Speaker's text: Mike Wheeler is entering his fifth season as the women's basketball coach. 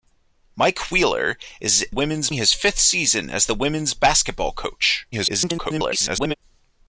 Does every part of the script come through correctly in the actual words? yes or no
no